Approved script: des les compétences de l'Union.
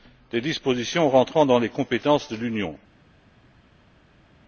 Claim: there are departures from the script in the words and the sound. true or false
true